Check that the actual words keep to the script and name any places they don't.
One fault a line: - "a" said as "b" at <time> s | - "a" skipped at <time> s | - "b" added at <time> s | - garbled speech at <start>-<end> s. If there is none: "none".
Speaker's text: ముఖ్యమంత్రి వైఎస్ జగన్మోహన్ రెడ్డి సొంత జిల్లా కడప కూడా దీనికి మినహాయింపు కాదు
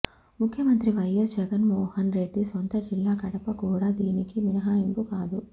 none